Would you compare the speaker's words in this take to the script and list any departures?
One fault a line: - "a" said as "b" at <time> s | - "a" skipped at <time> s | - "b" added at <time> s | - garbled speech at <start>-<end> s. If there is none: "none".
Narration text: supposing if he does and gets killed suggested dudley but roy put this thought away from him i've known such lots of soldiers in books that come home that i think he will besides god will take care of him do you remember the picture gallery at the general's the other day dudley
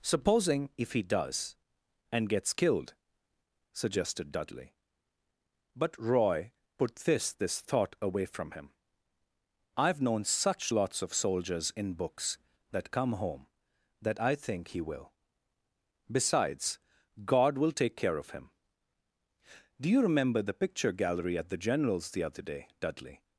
- "this" added at 7.3 s